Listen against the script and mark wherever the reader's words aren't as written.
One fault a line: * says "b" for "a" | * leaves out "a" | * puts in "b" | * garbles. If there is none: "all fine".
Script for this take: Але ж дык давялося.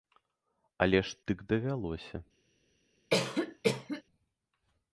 all fine